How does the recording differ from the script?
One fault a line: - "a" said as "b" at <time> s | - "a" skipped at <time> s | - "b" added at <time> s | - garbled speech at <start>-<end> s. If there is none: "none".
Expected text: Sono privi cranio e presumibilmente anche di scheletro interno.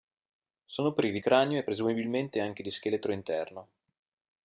none